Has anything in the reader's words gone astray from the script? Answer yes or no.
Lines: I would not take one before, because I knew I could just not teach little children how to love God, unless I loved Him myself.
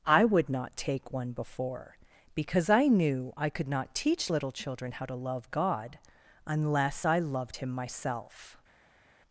yes